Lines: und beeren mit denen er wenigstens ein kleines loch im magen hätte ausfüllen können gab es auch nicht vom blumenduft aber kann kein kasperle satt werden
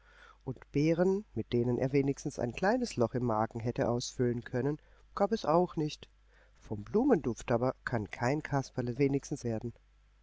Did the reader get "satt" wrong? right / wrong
wrong